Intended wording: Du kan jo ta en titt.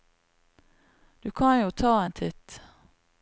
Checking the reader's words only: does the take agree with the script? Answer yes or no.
yes